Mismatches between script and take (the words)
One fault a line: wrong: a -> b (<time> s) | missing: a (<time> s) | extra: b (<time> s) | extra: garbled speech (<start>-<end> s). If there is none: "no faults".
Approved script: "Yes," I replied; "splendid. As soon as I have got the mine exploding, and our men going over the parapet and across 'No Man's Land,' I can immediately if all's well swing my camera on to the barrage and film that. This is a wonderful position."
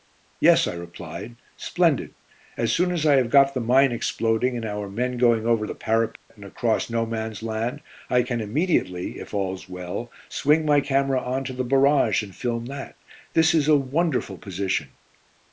no faults